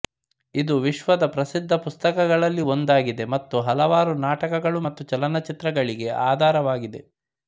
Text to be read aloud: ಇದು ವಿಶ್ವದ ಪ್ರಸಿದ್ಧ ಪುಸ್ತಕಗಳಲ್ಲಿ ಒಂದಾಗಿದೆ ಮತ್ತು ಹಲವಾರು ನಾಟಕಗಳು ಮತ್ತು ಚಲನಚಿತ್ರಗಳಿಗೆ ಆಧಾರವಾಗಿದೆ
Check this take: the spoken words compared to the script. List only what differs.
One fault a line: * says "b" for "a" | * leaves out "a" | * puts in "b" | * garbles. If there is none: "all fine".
all fine